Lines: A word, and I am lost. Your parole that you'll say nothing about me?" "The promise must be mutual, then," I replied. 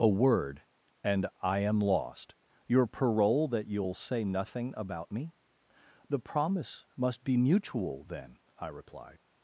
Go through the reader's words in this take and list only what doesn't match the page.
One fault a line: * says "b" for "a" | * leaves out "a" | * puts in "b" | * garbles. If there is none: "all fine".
all fine